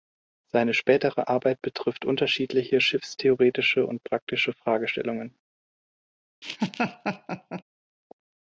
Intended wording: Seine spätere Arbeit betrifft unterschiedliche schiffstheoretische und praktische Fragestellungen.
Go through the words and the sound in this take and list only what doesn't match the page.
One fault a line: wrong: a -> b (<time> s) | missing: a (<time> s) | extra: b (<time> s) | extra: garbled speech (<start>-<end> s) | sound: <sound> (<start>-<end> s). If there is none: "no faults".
sound: laugh (6.4-7.6 s)